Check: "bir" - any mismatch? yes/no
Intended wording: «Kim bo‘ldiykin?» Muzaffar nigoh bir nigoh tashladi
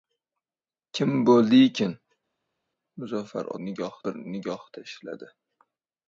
no